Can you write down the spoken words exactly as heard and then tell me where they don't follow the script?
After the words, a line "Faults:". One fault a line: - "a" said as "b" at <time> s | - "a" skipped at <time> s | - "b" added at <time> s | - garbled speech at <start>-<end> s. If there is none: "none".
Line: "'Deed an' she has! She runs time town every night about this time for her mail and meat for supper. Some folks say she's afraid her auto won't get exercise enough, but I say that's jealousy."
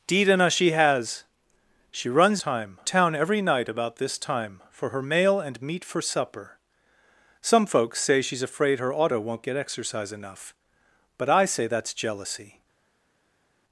"'Deed an' she has! She runs time town every night about this time for her mail and meat for supper. Some folks say she's afraid her auto won't get exercise enough, but I say that's jealousy."
Faults:
none